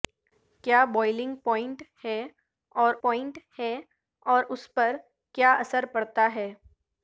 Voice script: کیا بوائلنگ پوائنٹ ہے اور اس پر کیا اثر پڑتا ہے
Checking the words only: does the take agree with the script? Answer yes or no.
no